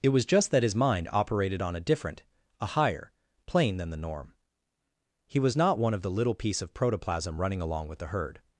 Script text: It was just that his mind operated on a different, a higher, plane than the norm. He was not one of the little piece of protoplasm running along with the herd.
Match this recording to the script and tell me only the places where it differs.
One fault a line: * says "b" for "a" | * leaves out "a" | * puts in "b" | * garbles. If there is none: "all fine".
all fine